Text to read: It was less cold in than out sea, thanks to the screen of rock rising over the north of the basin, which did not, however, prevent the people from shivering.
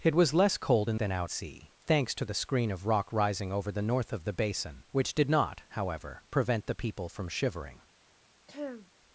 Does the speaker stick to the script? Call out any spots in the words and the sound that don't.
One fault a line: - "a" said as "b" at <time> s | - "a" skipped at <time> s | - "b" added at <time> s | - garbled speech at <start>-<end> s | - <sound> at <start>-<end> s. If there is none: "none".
- throat clearing at 8.5-8.9 s